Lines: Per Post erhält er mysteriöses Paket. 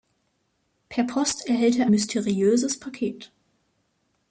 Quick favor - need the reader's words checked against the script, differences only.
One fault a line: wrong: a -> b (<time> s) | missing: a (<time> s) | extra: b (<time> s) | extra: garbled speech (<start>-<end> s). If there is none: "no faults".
no faults